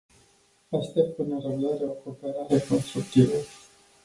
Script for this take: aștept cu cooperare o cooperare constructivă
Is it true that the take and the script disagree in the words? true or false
true